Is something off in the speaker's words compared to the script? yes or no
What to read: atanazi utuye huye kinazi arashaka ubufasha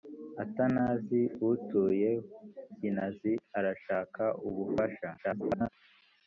yes